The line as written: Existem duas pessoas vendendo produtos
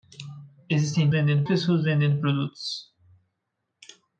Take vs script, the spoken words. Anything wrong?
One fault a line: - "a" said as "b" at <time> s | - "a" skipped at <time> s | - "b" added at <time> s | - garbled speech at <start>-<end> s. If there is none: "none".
- "duas" said as "vendendo" at 1.1 s